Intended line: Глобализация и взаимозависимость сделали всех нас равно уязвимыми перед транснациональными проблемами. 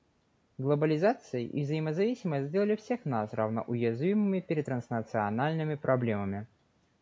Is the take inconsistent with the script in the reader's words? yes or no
no